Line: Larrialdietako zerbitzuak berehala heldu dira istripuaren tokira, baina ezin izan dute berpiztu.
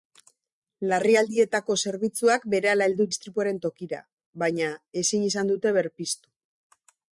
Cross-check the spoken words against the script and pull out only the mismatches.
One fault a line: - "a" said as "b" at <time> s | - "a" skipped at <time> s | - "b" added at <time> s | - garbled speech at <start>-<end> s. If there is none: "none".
- "dira" skipped at 3.1 s